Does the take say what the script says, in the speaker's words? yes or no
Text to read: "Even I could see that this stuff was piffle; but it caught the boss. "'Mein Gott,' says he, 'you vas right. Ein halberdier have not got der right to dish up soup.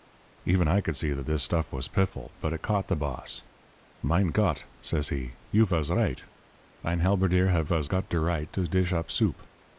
no